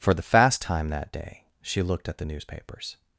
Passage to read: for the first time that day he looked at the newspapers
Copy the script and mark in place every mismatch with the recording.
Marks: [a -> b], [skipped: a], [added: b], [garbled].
for the [first -> fast] time that day [he -> she] looked at the newspapers